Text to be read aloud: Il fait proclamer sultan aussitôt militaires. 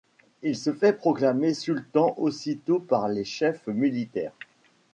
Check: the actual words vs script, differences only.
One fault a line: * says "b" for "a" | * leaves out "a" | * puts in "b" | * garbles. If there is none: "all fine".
* puts in "se"
* puts in "par les chefs"